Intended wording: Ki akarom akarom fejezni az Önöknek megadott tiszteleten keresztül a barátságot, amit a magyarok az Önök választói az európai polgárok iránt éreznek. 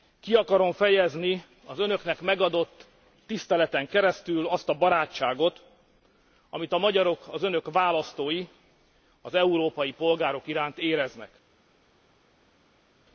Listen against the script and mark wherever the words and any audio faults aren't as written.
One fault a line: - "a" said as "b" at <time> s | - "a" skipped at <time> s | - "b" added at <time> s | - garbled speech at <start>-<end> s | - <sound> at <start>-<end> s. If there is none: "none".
- "akarom" skipped at 0.7 s
- "azt" added at 4.5 s